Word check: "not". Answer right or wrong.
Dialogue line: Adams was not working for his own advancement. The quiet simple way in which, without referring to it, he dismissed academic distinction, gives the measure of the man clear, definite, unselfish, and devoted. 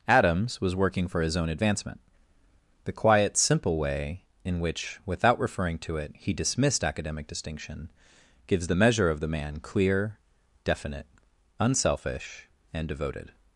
wrong